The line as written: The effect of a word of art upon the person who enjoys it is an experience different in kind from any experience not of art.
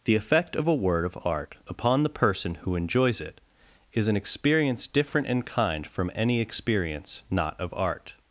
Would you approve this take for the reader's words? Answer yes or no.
yes